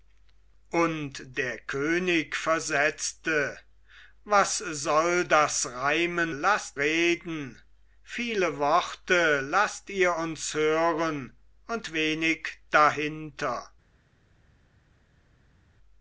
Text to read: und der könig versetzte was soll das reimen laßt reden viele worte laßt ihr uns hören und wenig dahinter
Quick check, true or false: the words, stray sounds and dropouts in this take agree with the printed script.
true